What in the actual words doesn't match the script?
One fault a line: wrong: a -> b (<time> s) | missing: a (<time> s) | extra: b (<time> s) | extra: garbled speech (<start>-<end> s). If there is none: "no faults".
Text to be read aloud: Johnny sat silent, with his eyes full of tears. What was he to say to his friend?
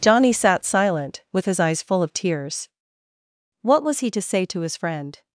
no faults